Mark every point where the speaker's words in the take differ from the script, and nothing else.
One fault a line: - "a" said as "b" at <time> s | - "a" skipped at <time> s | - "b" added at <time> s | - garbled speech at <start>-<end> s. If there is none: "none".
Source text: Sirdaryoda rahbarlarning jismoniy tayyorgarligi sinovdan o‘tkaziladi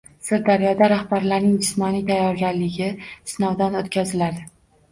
none